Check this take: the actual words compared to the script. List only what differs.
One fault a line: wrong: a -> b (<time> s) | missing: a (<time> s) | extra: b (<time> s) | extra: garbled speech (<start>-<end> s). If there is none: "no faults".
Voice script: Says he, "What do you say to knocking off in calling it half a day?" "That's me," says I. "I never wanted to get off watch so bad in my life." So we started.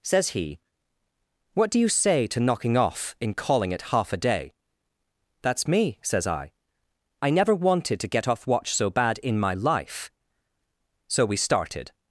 no faults